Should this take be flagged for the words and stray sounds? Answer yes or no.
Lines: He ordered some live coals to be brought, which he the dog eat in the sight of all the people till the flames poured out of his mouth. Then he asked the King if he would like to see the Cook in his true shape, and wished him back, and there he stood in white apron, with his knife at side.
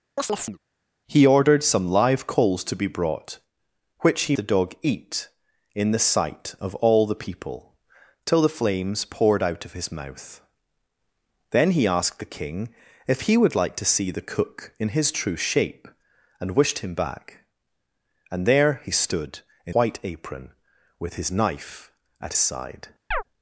yes